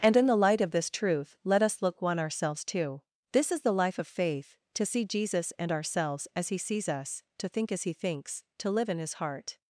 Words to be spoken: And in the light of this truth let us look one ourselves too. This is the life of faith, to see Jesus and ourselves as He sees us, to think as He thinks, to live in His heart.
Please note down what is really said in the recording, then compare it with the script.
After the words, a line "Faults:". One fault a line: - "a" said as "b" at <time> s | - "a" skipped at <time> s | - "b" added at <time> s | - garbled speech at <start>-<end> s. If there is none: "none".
And in the light of this truth let us look one ourselves too. This is the life of faith, to see Jesus and ourselves as He sees us, to think as He thinks, to live in His heart.
Faults:
none